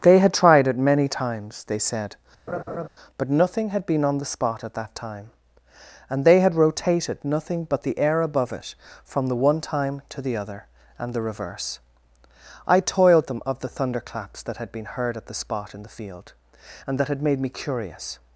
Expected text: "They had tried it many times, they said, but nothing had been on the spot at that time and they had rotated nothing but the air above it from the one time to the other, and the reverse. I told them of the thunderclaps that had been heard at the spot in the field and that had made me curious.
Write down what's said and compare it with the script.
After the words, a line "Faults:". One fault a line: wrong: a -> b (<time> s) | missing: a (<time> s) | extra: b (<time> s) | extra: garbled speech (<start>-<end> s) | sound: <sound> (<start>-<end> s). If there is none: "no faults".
"They had tried it many times, they said, but nothing had been on the spot at that time and they had rotated nothing but the air above it from the one time to the other, and the reverse. I toiled them of the thunderclaps that had been heard at the spot in the field and that had made me curious.
Faults:
sound: laugh (2.5-2.9 s)
wrong: told -> toiled (12.8 s)